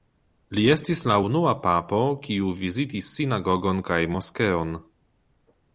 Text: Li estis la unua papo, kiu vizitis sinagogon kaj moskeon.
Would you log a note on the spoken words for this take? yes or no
no